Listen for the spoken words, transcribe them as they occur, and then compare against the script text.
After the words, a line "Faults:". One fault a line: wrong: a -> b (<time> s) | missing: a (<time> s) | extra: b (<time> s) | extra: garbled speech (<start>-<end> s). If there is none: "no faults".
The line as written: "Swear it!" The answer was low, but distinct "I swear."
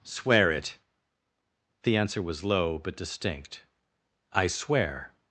"Swear it!" The answer was low, but distinct "I swear."
Faults:
no faults